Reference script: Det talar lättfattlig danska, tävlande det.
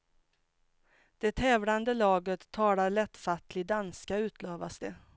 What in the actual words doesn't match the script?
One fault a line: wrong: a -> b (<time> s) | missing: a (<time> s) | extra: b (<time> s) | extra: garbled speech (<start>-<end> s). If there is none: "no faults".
extra: tävlande laget (1.3 s)
wrong: tävlande -> utlovas (4.2 s)